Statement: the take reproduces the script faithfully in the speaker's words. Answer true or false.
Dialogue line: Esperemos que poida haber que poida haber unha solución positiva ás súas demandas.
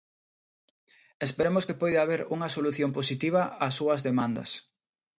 false